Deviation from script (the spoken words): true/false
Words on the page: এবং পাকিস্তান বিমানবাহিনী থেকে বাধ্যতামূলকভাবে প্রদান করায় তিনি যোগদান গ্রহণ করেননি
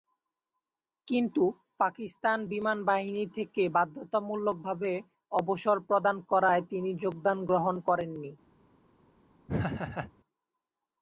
true